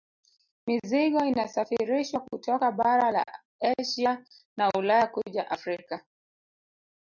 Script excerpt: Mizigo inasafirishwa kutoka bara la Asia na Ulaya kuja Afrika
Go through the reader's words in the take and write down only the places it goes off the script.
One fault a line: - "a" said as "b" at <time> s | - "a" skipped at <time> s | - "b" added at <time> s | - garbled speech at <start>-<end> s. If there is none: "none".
none